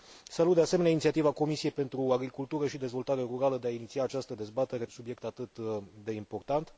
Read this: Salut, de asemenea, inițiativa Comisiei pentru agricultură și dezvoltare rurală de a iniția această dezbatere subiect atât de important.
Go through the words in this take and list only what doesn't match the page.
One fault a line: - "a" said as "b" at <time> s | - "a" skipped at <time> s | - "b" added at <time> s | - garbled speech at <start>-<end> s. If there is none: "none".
none